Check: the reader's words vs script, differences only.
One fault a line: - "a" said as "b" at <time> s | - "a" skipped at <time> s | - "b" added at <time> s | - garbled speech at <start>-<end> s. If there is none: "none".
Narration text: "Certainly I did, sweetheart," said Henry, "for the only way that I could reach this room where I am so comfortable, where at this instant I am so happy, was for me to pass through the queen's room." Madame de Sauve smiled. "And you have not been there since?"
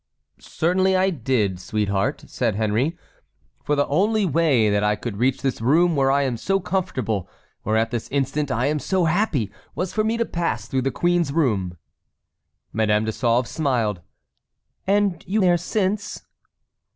- "have not been" skipped at 15.4 s